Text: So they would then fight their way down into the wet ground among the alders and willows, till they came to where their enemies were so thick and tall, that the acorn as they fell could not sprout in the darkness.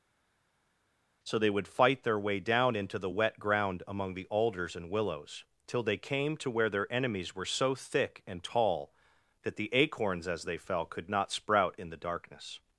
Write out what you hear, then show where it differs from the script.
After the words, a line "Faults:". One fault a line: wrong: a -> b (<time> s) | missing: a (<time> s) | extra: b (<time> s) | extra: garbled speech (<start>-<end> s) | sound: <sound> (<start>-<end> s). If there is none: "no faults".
So they would fight their way down into the wet ground among the alders and willows, till they came to where their enemies were so thick and tall, that the acorns as they fell could not sprout in the darkness.
Faults:
missing: then (1.7 s)
wrong: acorn -> acorns (9.7 s)